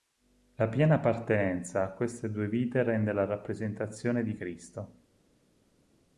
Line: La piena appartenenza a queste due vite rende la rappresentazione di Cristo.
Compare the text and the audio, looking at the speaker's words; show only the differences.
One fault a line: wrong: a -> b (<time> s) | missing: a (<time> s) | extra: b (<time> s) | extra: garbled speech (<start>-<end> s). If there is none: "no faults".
no faults